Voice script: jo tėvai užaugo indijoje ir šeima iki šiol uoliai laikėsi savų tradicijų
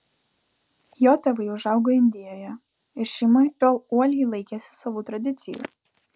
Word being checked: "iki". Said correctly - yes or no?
no